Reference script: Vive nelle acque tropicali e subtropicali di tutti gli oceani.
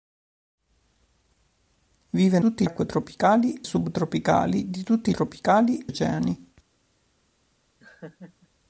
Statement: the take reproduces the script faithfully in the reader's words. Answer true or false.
false